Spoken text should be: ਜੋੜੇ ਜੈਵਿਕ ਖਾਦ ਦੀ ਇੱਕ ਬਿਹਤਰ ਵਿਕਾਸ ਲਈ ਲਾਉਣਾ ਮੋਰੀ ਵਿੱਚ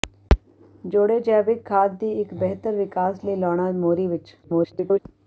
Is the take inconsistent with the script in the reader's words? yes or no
yes